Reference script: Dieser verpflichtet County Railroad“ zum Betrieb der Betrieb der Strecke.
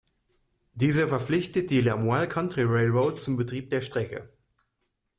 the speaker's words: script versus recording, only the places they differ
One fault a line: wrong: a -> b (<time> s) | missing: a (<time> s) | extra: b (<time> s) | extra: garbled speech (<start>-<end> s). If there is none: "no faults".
extra: die Lamoille (1.7 s)
missing: Betrieb der (3.8 s)